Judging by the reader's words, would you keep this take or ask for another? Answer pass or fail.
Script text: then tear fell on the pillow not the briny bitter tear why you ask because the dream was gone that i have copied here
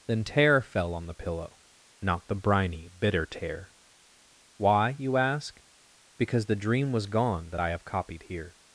pass